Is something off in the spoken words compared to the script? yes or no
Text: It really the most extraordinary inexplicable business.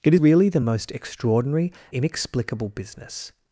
no